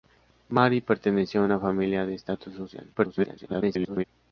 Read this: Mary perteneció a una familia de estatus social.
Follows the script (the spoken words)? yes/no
no